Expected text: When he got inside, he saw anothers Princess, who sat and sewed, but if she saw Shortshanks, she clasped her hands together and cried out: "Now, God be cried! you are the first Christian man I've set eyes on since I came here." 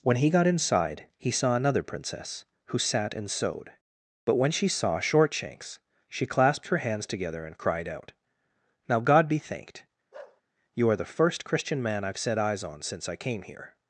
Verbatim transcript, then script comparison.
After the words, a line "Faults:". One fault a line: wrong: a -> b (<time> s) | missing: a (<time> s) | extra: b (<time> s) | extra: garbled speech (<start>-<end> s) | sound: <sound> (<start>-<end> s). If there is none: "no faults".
When he got inside, he saw another Princess, who sat and sewed, but when she saw Shortshanks, she clasped her hands together and cried out: "Now, God be thanked! you are the first Christian man I've set eyes on since I came here."
Faults:
wrong: anothers -> another (1.6 s)
wrong: if -> when (4.3 s)
wrong: cried -> thanked (9.4 s)
sound: bark (10.1-10.4 s)